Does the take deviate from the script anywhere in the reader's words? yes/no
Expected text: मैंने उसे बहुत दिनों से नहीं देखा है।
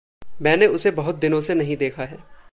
no